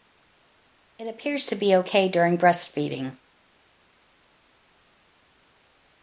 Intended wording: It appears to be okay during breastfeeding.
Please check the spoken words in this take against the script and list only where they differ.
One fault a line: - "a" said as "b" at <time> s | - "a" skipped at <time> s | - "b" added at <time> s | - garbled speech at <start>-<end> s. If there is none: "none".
none